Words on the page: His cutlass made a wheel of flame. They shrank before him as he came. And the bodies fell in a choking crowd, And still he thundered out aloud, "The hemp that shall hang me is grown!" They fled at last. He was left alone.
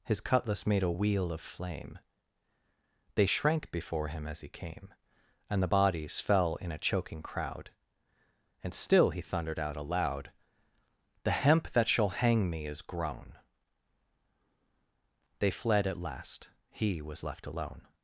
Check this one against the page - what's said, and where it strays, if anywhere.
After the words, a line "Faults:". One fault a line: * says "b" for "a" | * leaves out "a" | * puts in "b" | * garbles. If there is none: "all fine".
His cutlass made a wheel of flame. They shrank before him as he came. And the bodies fell in a choking crowd, And still he thundered out aloud, "The hemp that shall hang me is grown!" They fled at last. He was left alone.
Faults:
all fine